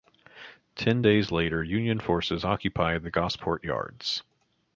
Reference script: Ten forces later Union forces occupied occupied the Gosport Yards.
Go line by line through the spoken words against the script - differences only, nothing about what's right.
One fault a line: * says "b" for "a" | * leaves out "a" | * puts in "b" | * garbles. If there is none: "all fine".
* says "days" for "forces"
* leaves out "occupied"